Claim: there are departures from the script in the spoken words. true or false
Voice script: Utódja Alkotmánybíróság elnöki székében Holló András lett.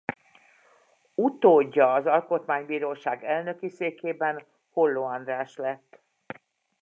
true